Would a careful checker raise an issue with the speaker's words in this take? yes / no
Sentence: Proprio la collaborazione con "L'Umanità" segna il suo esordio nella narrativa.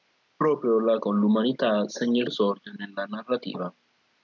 yes